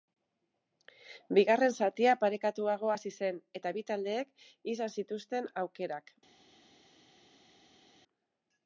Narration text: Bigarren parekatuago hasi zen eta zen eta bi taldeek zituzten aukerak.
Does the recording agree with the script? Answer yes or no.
no